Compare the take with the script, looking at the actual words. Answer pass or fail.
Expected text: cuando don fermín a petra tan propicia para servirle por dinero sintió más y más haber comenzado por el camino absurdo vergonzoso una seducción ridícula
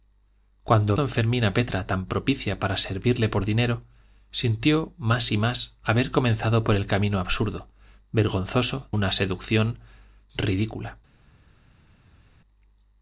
pass